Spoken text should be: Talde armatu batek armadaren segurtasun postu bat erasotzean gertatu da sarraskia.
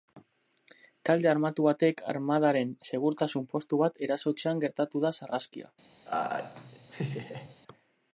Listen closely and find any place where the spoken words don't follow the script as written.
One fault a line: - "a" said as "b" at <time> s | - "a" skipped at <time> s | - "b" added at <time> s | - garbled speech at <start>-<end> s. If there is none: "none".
none